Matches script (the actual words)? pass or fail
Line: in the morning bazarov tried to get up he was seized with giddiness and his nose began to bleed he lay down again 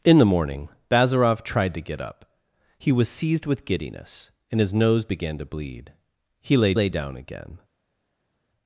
fail